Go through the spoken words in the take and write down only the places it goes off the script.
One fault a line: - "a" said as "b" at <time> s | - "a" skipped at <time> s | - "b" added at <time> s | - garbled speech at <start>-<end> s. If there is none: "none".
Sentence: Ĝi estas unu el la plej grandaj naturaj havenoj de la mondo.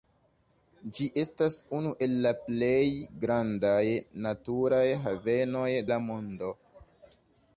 - "de" skipped at 5.7 s